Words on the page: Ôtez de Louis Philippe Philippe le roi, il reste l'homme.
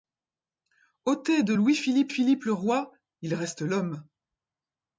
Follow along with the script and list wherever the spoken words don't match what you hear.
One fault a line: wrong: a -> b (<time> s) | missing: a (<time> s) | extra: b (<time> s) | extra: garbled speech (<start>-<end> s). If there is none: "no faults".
no faults